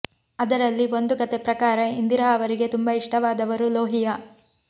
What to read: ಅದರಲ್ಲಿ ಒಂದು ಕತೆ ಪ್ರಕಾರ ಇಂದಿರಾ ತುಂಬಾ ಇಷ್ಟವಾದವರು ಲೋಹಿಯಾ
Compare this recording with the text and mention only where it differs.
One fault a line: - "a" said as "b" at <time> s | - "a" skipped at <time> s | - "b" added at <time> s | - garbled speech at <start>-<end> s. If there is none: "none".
- "ಅವರಿಗೆ" added at 2.3 s